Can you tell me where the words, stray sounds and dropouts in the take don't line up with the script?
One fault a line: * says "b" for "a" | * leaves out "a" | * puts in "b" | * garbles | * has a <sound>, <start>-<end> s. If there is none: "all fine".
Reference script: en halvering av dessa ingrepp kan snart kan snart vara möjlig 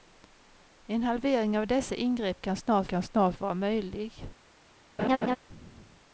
* has a laugh, 5.0-5.4 s